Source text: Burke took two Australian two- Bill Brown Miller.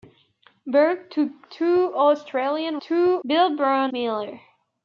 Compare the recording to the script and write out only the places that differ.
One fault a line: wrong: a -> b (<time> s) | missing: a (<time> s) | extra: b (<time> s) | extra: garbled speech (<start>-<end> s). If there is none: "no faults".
no faults